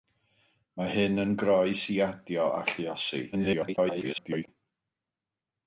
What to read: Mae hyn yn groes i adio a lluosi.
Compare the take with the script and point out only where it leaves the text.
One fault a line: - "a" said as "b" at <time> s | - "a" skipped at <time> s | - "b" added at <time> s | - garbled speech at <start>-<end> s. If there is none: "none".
- garbled speech at 3.3-4.5 s